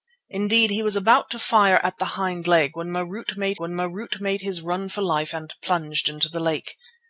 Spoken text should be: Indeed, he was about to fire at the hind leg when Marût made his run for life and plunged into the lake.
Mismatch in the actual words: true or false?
true